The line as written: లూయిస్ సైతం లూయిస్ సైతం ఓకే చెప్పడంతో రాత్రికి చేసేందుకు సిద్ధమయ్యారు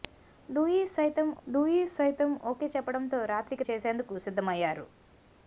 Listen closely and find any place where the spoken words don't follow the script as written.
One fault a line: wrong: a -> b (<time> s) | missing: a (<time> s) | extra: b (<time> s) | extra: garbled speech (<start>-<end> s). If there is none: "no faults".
no faults